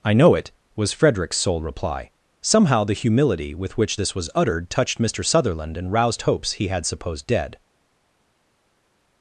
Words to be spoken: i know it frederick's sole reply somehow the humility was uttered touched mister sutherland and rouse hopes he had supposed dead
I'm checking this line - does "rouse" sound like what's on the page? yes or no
no